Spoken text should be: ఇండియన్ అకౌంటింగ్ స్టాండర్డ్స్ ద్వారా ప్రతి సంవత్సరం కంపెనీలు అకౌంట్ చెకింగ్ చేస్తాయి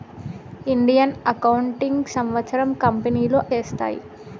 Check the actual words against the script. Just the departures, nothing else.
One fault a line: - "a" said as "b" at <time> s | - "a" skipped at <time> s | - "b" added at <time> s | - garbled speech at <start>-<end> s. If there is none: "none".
- "స్టాండర్డ్స్ ద్వారా ప్రతి" skipped at 2.1 s
- "అకౌంట్ చెకింగ్" skipped at 3.4 s